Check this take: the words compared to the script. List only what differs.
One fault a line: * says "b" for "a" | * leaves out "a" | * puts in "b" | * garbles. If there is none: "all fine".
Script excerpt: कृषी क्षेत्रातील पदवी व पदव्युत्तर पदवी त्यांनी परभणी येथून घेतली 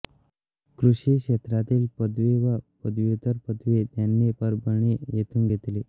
all fine